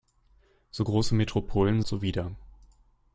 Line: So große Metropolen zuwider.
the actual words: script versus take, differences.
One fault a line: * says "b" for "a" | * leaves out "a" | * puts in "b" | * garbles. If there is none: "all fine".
all fine